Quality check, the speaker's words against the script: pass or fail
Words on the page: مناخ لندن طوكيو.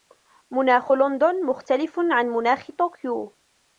fail